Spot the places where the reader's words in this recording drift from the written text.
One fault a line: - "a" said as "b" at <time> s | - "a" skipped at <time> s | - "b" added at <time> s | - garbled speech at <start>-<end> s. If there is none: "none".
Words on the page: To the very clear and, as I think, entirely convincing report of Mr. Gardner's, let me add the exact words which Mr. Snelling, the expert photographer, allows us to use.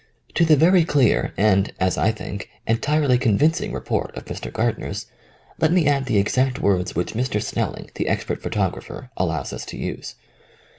none